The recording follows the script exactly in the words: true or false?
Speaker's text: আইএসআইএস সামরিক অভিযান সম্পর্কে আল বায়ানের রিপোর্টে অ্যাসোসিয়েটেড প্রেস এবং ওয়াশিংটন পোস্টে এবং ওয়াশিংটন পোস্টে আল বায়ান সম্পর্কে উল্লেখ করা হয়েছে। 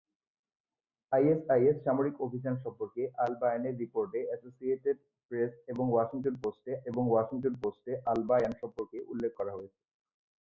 true